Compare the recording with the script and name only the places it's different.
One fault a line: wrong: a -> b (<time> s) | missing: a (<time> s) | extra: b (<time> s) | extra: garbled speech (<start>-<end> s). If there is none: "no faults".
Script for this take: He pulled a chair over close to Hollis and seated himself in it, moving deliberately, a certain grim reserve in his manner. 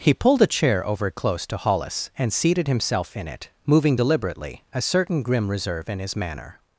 no faults